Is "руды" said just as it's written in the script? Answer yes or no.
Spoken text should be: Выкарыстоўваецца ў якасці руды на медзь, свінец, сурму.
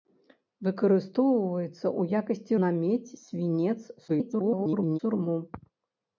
no